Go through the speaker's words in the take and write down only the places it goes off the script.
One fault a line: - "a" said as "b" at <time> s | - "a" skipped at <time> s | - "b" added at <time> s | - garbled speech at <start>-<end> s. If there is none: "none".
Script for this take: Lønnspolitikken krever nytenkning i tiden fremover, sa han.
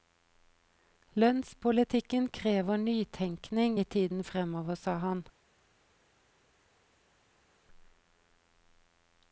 none